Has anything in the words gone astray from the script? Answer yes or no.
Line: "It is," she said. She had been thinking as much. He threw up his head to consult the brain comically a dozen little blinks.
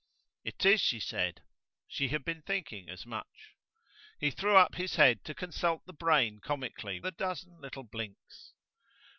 no